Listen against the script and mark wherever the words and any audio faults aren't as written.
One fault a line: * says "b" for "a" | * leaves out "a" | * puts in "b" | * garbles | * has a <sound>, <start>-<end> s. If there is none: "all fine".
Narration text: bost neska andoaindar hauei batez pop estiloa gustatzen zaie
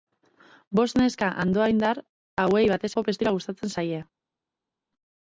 all fine